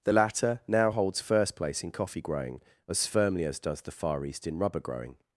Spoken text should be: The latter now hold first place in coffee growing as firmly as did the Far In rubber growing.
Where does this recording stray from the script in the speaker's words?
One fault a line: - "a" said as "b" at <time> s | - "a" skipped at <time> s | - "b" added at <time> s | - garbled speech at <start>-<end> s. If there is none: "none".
- "hold" said as "holds" at 0.9 s
- "did" said as "does" at 3.6 s
- "East" added at 4.2 s